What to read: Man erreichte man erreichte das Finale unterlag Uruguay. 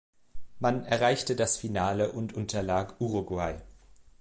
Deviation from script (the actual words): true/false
true